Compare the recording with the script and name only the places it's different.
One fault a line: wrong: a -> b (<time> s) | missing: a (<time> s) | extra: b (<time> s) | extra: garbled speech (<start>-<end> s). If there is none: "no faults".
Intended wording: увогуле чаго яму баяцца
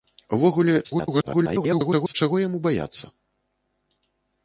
extra: garbled speech (0.8-2.1 s)